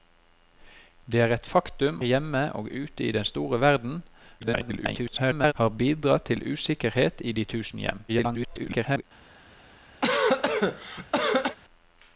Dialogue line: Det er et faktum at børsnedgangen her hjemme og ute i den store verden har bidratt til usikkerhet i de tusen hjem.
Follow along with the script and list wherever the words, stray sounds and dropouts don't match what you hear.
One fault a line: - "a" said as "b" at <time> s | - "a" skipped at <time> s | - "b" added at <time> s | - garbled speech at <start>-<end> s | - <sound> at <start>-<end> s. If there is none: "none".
- "at børsnedgangen her" skipped at 2.0 s
- garbled speech at 4.4-5.5 s
- garbled speech at 8.1-9.0 s
- cough at 10.0-11.6 s